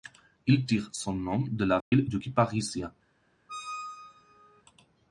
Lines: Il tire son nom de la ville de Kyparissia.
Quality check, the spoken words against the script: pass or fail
pass